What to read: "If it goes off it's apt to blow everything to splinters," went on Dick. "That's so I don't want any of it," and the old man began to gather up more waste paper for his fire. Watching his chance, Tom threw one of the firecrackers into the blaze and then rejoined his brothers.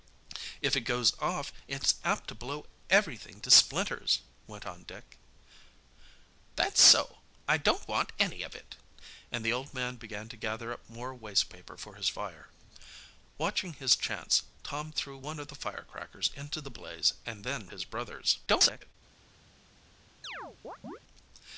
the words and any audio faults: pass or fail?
fail